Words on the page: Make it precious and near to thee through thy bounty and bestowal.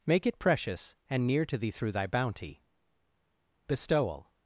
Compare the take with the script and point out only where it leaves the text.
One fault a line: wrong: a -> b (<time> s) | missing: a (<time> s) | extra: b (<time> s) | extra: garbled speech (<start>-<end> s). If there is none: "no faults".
missing: and (2.6 s)